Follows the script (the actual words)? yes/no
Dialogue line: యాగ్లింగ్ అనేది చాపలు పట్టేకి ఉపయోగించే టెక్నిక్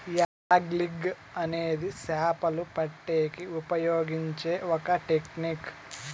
no